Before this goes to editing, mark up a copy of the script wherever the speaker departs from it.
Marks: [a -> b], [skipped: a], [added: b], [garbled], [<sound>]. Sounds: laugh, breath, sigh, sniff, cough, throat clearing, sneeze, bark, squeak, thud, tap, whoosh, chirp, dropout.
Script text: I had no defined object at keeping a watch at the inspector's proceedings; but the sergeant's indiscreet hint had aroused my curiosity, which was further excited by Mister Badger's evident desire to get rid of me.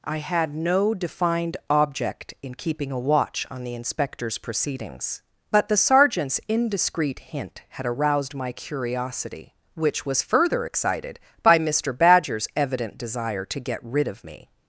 I had no defined object [at -> in] keeping a watch [at -> on] the inspector's proceedings; but the sergeant's indiscreet hint had aroused my curiosity, which was further excited by Mister Badger's evident desire to get rid of me.